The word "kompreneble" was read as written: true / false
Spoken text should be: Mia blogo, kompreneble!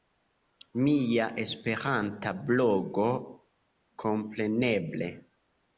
true